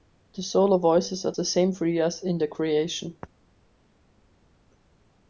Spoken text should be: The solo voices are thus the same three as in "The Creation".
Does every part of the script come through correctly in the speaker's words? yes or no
no